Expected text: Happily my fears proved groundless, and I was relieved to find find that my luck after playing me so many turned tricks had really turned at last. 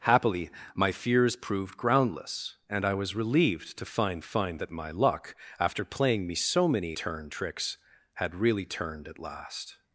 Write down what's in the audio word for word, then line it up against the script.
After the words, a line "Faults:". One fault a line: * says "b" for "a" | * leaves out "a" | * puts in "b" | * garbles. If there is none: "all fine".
Happily my fears proved groundless, and I was relieved to find find that my luck after playing me so many turned tricks had really turned at last.
Faults:
all fine